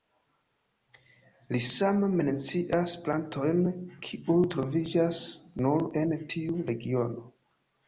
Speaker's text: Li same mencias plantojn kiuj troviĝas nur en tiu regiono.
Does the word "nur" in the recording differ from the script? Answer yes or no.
no